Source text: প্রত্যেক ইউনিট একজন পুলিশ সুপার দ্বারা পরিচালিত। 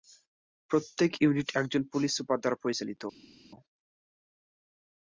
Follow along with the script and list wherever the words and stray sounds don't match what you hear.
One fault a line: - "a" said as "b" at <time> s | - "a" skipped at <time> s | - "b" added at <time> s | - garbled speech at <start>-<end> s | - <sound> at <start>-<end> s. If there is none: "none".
none